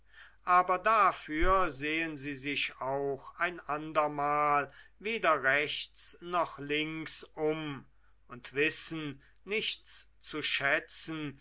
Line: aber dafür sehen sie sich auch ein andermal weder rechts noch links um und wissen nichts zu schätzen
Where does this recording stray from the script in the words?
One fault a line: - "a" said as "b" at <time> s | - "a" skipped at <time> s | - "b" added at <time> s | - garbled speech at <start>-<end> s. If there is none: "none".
none